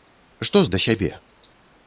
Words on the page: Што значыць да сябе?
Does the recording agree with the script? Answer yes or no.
no